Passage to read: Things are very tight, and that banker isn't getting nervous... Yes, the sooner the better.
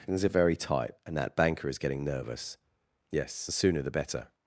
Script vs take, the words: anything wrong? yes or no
yes